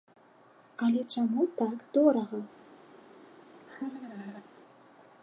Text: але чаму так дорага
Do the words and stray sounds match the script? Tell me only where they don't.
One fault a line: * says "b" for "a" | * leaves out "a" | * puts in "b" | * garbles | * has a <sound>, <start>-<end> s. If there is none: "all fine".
* has a laugh, 3.5-4.4 s